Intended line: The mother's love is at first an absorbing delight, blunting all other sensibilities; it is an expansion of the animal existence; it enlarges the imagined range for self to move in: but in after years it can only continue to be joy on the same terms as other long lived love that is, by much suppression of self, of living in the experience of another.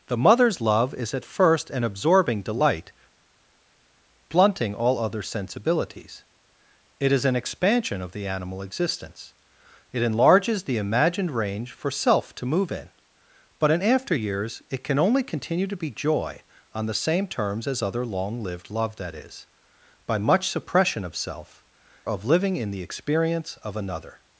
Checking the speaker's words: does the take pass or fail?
pass